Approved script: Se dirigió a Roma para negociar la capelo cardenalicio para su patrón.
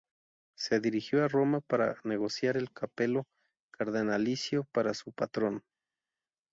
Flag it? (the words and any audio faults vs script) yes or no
yes